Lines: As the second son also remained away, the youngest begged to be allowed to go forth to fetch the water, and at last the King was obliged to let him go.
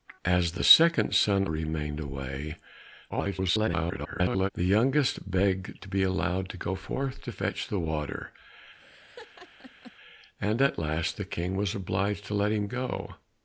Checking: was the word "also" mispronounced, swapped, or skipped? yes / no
yes